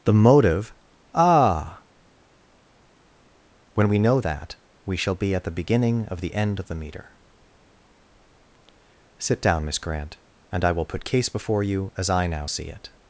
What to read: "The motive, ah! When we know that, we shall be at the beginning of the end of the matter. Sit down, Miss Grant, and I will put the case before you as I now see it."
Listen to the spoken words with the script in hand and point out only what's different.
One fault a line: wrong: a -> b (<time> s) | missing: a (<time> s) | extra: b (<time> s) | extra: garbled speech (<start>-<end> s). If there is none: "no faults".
wrong: matter -> meter (6.7 s)
missing: the (11.0 s)